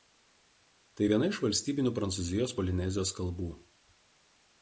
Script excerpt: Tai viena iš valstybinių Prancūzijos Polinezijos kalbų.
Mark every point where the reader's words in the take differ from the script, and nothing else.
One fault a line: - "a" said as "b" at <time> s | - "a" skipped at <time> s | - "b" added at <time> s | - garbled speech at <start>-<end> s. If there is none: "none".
none